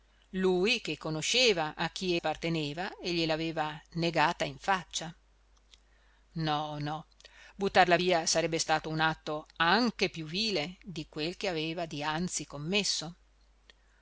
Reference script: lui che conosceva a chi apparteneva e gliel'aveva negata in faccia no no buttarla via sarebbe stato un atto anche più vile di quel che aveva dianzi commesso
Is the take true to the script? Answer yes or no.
yes